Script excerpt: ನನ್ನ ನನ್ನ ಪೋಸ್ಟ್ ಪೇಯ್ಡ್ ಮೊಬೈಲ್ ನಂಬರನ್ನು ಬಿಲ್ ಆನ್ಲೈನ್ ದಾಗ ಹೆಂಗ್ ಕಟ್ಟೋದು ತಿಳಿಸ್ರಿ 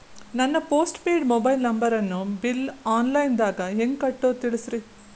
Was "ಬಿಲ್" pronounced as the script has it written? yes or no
yes